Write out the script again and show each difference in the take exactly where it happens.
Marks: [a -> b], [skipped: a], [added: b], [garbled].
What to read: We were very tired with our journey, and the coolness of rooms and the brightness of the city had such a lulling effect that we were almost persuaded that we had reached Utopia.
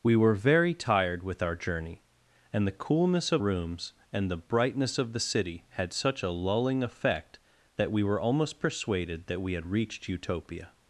We were very tired with our journey, and the coolness of rooms and the brightness of the city had such a lulling effect that we were almost persuaded that we had reached Utopia.